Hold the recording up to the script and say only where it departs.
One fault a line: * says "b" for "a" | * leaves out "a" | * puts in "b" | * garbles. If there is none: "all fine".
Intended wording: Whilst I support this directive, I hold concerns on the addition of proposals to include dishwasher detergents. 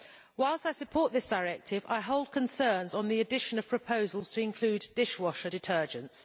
all fine